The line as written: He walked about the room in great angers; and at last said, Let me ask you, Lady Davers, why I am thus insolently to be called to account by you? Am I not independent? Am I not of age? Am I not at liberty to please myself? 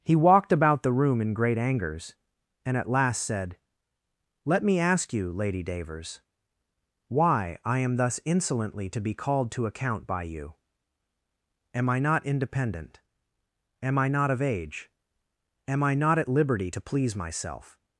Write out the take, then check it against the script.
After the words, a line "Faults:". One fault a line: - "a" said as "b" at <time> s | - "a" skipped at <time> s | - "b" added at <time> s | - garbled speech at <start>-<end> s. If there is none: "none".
He walked about the room in great angers; and at last said, Let me ask you, Lady Davers, why I am thus insolently to be called to account by you? Am I not independent? Am I not of age? Am I not at liberty to please myself?
Faults:
none